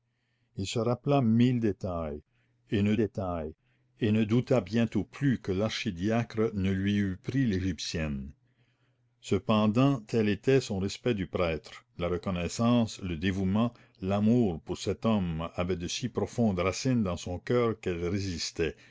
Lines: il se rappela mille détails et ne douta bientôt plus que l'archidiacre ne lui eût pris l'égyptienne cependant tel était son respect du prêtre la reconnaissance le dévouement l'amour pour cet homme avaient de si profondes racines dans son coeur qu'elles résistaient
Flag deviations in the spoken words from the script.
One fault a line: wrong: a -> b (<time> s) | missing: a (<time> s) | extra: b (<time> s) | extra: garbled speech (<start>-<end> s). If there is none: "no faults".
extra: détails et ne (2.9 s)